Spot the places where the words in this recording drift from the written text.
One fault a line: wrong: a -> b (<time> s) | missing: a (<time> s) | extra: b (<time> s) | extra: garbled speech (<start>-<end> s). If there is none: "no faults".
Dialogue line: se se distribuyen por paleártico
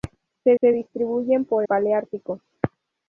no faults